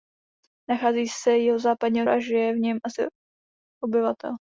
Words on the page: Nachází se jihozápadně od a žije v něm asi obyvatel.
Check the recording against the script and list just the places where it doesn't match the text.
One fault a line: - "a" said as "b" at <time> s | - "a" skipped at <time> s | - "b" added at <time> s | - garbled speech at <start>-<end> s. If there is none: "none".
none